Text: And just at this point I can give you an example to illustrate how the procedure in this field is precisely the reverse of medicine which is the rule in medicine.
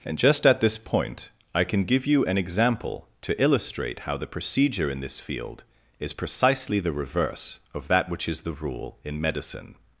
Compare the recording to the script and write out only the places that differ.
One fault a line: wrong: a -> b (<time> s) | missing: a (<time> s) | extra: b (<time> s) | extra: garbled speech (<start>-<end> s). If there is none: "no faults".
wrong: medicine -> that (7.9 s)